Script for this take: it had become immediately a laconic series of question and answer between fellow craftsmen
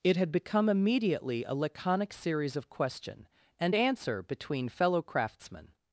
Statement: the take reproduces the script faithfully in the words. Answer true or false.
true